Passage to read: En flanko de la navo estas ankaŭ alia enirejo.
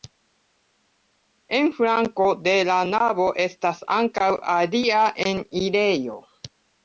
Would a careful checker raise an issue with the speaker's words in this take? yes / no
no